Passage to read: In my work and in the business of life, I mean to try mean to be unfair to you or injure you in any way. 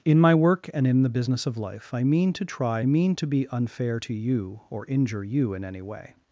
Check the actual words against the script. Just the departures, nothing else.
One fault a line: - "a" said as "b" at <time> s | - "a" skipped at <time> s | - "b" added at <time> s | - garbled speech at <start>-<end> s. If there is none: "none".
none